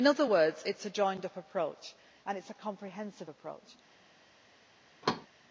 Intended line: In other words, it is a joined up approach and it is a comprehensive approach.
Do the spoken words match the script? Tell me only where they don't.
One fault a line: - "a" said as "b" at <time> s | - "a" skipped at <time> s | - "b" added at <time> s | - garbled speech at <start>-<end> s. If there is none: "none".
none